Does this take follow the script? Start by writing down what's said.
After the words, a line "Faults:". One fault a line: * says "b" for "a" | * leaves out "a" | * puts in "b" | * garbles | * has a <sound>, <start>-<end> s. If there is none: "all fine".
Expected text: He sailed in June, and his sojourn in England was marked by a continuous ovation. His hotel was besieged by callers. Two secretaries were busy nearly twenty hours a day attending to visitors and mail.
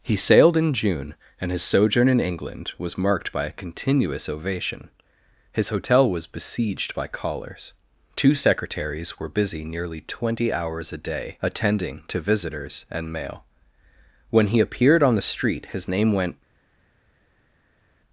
He sailed in June, and his sojourn in England was marked by a continuous ovation. His hotel was besieged by callers. Two secretaries were busy nearly twenty hours a day attending to visitors and mail. When he appeared on the street his name went
Faults:
* puts in "When he appeared on the street his name went"